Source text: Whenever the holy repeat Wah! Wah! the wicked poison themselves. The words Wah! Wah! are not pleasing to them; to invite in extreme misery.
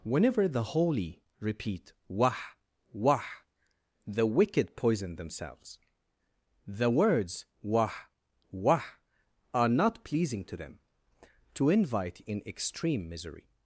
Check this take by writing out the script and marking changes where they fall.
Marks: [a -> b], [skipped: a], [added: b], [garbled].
Whenever the holy repeat Wah! Wah! the wicked poison themselves. The words Wah! Wah! are not pleasing to them; to invite in extreme misery.